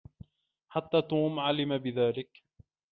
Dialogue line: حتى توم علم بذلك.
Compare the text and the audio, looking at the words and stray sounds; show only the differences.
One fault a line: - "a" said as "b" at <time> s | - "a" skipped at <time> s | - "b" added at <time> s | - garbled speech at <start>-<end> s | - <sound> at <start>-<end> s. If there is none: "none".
none